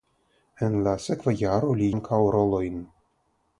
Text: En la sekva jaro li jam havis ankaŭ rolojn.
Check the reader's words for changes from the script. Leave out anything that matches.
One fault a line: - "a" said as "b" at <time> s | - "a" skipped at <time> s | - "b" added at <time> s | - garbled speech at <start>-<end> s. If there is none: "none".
- "jam havis" skipped at 1.9 s